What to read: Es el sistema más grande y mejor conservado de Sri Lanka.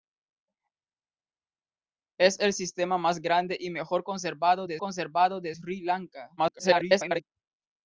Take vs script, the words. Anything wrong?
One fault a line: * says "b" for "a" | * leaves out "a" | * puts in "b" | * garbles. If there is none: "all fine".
* puts in "conservado de"
* garbles